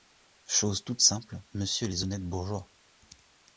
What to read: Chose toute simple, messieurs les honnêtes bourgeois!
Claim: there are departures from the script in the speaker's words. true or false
false